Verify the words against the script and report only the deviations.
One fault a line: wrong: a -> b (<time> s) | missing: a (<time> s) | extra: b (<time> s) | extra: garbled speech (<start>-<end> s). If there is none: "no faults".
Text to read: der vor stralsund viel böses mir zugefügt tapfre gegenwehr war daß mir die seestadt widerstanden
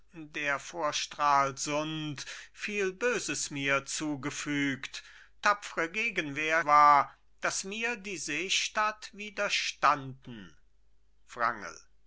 no faults